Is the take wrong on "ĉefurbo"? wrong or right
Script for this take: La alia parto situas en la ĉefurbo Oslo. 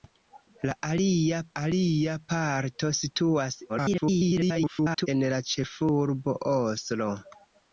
right